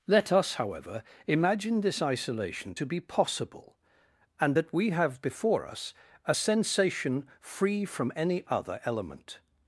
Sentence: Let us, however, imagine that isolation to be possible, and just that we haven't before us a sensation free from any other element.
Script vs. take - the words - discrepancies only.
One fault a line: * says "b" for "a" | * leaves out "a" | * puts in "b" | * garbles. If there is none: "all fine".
* says "this" for "that"
* leaves out "just"
* says "have" for "haven't"